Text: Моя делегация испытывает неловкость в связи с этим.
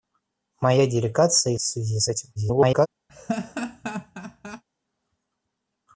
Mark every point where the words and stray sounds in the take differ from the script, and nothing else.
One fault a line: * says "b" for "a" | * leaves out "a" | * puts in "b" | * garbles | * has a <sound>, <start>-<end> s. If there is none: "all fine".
* leaves out "испытывает неловкость"
* garbles
* has a laugh, 3.1-4.6 s